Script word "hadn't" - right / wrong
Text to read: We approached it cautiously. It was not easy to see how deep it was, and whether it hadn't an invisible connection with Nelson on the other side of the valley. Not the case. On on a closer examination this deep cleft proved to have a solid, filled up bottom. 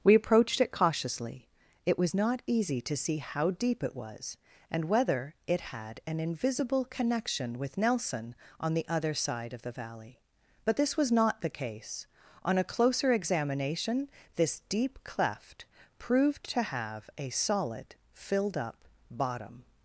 wrong